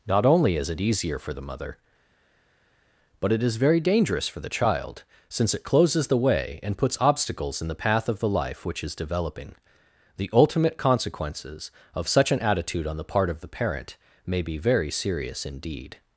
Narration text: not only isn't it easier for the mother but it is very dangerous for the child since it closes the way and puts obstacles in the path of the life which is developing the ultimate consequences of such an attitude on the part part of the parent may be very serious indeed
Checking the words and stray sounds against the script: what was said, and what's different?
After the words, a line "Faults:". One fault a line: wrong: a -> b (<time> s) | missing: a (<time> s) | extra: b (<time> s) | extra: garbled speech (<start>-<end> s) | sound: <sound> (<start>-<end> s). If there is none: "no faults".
not only is it easier for the mother but it is very dangerous for the child since it closes the way and puts obstacles in the path of the life which is developing the ultimate consequences of such an attitude on the part of the parent may be very serious indeed
Faults:
wrong: isn't -> is (0.6 s)
missing: part (13.3 s)